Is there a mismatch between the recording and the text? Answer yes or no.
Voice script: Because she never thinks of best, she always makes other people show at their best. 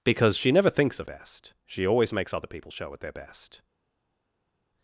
no